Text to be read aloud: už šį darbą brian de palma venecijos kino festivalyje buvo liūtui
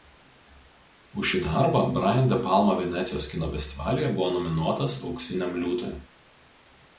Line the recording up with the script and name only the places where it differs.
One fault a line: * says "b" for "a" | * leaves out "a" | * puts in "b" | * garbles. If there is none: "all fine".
* puts in "nominuotas auksiniam"